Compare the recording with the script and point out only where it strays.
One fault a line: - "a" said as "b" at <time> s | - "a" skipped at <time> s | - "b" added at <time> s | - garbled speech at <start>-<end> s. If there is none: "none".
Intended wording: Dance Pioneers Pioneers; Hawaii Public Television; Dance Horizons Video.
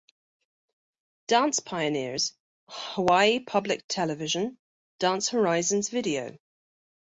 - "Pioneers" skipped at 2.3 s